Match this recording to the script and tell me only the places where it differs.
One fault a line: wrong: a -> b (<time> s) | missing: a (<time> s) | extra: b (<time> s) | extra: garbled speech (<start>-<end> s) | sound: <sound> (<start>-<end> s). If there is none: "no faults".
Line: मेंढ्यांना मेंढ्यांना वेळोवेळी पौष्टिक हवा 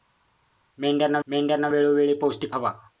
no faults